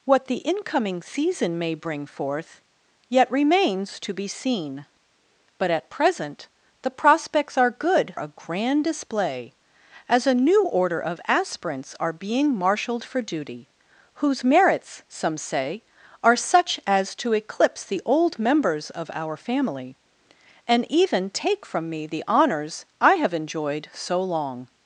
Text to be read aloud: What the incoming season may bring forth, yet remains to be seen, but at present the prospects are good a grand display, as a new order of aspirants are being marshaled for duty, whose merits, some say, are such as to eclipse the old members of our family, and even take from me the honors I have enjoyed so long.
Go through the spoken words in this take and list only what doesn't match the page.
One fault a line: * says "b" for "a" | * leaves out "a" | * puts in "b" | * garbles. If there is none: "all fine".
all fine